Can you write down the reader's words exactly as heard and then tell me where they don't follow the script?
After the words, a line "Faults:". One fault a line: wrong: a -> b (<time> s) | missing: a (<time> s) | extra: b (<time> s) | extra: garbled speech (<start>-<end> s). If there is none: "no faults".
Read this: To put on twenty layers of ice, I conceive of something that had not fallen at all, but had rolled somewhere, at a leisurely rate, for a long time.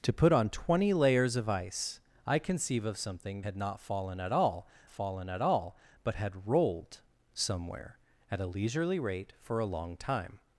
To put on twenty layers of ice, I conceive of something had not fallen at all fallen at all, but had rolled somewhere, at a leisurely rate, for a long time.
Faults:
missing: that (3.4 s)
extra: fallen at all (4.9 s)